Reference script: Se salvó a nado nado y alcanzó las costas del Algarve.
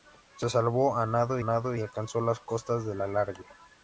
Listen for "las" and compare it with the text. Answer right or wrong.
right